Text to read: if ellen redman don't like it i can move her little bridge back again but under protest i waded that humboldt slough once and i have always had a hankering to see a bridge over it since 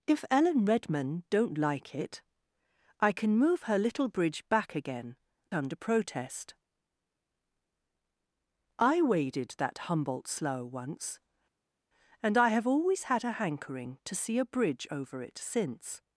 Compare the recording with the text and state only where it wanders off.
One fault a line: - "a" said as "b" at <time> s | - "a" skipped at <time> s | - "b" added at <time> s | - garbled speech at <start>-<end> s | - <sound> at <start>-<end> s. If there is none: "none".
- "but" skipped at 5.2 s